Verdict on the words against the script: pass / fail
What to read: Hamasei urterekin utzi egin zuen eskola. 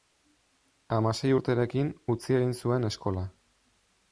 pass